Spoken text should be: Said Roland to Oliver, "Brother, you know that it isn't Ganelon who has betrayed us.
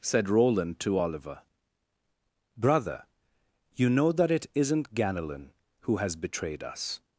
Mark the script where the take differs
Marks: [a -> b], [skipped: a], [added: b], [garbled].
Said Roland to Oliver, "Brother, you know that it isn't Ganelon who has betrayed us.